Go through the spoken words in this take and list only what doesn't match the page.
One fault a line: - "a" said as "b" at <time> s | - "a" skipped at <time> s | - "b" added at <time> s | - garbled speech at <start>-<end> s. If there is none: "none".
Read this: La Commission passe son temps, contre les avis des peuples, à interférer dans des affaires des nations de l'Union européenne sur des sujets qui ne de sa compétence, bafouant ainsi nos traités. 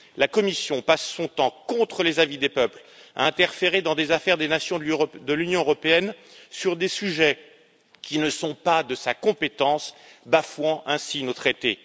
- "sont pas" added at 8.3 s